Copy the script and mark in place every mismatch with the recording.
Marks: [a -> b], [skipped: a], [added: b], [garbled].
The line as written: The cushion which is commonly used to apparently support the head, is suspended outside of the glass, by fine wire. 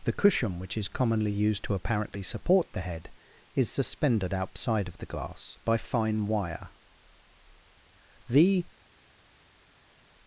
The cushion which is commonly used to apparently support the head, is suspended outside of the glass, by fine wire. [added: The]